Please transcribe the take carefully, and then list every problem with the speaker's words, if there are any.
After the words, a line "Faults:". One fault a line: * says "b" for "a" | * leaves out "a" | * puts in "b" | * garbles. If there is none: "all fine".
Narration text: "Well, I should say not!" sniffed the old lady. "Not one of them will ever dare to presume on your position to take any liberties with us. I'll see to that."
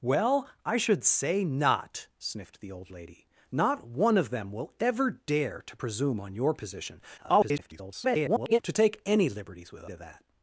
"Well, I should say not!" sniffed the old lady. "Not one of them will ever dare to presume on your position [garbled] to take any liberties with to that."
Faults:
* garbles
* leaves out "us I'll see"